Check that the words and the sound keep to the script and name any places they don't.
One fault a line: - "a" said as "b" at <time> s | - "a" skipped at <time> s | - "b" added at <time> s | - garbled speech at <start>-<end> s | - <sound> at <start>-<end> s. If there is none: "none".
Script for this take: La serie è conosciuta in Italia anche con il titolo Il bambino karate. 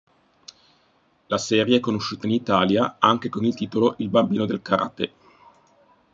- "del" added at 4.4 s